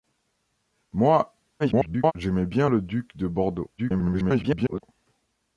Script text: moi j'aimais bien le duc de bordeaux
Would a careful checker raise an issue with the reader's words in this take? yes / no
yes